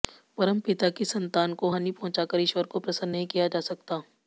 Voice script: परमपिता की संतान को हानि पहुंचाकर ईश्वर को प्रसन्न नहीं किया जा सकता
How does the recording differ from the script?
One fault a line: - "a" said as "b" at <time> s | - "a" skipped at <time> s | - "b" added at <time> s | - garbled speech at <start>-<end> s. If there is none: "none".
none